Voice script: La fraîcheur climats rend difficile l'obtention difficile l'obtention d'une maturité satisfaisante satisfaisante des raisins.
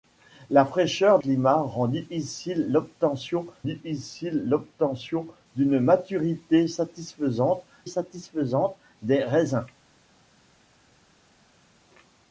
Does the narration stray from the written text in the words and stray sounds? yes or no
no